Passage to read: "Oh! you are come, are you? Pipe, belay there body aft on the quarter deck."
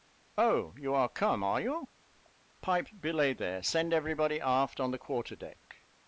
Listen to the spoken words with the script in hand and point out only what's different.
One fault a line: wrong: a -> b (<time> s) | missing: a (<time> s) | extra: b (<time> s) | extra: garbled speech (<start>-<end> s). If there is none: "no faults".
extra: send every (3.6 s)